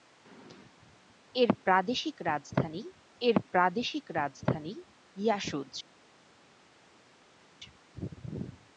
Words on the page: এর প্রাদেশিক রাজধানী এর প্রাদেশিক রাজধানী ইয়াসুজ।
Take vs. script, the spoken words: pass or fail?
pass